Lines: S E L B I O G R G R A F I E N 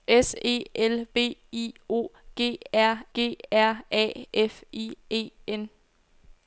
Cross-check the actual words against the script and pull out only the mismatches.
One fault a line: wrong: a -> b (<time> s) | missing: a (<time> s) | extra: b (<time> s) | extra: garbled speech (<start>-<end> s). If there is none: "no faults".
no faults